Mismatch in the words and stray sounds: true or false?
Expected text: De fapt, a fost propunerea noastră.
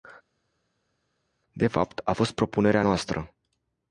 false